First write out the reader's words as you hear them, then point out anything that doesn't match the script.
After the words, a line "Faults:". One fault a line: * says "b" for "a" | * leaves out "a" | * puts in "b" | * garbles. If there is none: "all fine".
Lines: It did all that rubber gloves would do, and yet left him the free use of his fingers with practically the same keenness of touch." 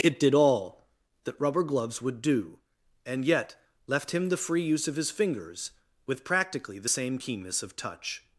It did all that rubber gloves would do, and yet left him the free use of his fingers with practically the same keenness of touch."
Faults:
all fine